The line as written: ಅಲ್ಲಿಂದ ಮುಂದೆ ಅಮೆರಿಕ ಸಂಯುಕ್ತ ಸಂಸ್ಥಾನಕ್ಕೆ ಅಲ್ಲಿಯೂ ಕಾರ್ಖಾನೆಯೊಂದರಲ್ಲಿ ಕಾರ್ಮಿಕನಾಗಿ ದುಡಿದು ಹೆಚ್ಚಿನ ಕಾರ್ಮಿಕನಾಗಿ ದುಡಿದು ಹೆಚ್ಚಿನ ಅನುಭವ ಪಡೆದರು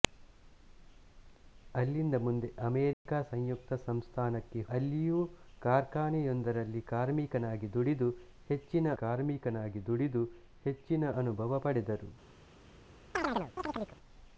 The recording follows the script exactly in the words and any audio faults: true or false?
false